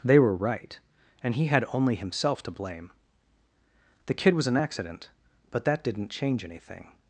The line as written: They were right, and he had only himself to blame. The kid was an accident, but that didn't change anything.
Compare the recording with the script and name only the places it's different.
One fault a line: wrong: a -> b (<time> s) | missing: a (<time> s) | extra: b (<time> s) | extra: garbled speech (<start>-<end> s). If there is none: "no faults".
no faults